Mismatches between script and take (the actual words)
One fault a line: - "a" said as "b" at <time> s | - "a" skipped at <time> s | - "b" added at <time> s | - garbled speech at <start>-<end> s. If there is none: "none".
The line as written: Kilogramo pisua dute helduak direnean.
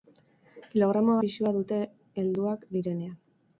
none